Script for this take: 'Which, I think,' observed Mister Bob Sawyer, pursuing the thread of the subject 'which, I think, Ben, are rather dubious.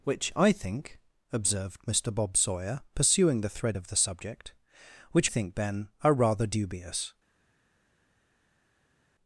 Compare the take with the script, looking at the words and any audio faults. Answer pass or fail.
fail